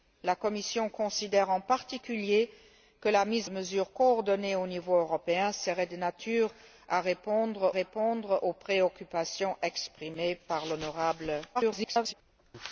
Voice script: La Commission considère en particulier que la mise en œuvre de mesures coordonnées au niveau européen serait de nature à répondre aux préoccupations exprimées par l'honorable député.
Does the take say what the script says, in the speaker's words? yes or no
no